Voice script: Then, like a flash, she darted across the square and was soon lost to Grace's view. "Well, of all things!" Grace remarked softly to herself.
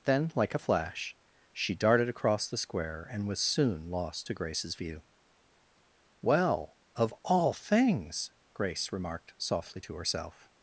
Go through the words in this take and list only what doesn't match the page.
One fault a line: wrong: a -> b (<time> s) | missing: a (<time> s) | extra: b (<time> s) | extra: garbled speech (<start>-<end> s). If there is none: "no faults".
no faults